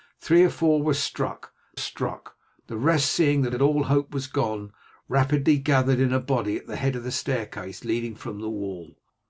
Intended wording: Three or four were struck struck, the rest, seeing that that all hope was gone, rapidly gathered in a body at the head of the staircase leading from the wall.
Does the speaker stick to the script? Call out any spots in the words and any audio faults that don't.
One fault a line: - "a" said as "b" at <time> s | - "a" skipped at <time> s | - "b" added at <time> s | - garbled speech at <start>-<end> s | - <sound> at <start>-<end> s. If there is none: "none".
none